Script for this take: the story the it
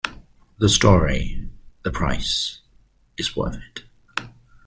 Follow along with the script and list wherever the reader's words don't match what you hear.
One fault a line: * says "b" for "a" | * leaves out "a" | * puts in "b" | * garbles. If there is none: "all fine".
* puts in "price is worth"